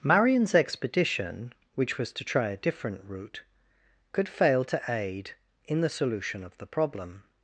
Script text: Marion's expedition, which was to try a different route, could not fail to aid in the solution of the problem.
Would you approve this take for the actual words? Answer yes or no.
no